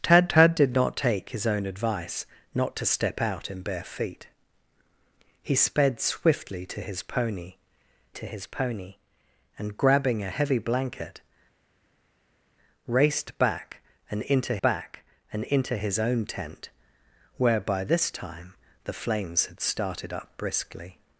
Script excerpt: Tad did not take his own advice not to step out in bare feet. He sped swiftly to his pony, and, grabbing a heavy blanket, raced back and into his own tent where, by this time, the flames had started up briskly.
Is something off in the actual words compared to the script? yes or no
yes